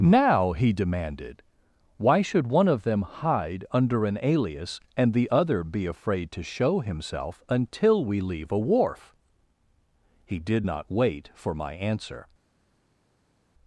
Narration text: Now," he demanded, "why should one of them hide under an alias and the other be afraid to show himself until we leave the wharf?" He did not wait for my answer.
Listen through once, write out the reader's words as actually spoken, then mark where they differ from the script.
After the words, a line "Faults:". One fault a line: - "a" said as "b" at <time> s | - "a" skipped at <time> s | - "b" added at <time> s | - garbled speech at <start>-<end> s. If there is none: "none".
Now," he demanded, "why should one of them hide under an alias and the other be afraid to show himself until we leave a wharf?" He did not wait for my answer.
Faults:
- "the" said as "a" at 8.5 s